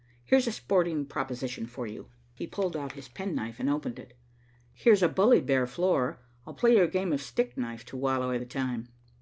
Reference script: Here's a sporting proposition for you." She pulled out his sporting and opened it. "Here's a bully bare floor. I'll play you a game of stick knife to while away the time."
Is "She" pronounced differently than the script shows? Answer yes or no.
yes